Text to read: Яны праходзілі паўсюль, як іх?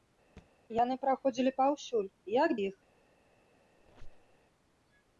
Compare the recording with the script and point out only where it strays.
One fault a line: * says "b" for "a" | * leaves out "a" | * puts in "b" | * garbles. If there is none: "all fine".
all fine